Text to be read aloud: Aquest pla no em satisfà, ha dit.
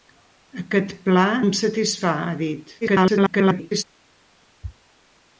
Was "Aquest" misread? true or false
false